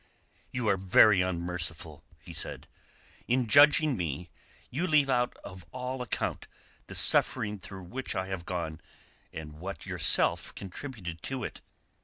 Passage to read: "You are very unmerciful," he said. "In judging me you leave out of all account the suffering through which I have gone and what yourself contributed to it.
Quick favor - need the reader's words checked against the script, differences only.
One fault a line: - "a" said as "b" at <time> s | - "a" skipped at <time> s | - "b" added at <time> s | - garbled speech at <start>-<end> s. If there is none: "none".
none